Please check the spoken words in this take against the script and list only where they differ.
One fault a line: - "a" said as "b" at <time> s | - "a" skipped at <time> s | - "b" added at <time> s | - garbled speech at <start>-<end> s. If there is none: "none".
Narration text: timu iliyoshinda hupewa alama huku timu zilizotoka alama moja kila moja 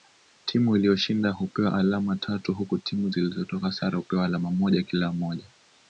- "tatu" added at 2.1 s
- "sare hupewa" added at 3.7 s